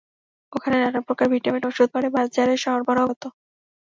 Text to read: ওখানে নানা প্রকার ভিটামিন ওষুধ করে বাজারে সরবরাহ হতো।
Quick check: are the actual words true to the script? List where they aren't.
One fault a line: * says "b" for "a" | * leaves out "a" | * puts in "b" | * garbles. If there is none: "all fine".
all fine